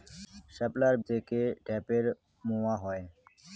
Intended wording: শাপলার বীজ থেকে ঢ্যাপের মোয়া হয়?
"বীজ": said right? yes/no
no